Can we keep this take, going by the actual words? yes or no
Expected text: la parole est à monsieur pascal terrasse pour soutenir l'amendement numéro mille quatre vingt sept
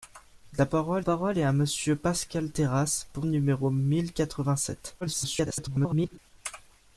no